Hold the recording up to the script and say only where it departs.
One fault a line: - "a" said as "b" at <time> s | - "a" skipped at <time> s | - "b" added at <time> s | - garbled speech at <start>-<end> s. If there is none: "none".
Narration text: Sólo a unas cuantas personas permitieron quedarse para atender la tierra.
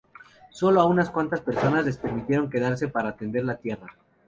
- "les" added at 1.8 s